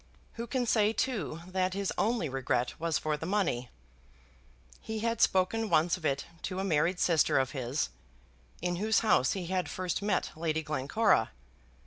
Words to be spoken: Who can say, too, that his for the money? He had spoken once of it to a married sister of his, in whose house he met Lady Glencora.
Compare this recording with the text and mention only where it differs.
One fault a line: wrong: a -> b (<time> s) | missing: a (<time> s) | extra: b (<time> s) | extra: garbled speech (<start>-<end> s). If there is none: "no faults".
extra: only regret was (1.9 s)
extra: had first (9.4 s)